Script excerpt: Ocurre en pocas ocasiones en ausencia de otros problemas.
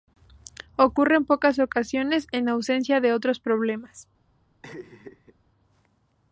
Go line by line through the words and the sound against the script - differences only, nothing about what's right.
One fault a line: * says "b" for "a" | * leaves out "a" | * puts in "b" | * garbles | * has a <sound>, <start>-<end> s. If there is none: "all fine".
* has a laugh, 4.6-5.4 s